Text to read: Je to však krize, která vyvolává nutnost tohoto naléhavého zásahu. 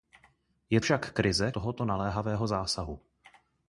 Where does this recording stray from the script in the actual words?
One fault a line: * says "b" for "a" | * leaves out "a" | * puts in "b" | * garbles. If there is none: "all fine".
* leaves out "to"
* leaves out "která vyvolává nutnost"